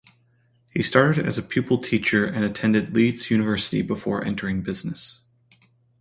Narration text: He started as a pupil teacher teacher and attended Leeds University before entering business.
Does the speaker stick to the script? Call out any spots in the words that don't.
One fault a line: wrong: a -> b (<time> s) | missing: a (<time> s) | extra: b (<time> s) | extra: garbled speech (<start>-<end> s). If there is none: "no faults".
missing: teacher (2.2 s)